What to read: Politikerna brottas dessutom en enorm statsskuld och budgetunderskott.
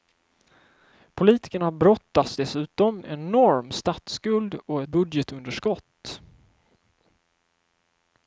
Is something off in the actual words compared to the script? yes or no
no